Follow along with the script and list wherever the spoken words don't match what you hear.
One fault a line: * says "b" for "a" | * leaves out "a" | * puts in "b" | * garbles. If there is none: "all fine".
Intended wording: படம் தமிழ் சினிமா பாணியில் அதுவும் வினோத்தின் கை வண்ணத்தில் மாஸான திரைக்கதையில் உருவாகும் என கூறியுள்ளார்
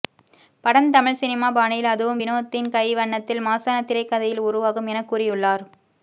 all fine